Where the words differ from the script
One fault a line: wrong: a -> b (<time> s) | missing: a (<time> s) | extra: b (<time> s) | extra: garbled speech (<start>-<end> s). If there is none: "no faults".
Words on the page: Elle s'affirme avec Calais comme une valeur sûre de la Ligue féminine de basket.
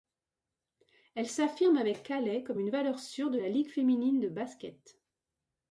no faults